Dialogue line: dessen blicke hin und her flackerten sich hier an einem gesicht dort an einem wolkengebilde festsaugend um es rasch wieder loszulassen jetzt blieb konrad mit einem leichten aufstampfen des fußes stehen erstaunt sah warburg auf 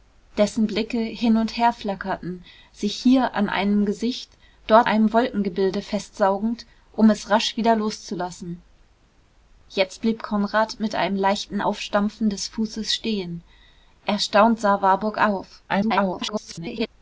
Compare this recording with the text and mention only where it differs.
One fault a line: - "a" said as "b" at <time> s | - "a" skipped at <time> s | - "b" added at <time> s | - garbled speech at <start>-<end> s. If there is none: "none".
- "an" skipped at 4.9 s
- garbled speech at 15.7-16.9 s